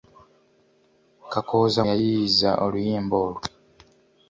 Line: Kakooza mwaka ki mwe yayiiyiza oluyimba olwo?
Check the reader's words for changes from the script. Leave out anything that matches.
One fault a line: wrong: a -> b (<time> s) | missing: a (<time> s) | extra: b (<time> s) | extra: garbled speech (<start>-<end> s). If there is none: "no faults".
missing: mwaka ki mwe (1.8 s)